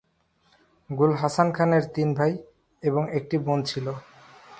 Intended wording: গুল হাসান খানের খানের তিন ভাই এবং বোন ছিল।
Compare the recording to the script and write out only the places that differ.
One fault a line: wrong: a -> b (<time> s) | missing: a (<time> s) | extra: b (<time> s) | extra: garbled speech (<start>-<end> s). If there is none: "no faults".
missing: খানের (1.8 s)
extra: একটি (3.2 s)